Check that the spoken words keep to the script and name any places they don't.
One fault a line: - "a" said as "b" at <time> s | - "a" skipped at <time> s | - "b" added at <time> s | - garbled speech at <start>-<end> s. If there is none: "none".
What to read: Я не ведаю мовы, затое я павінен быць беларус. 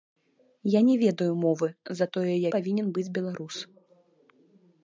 none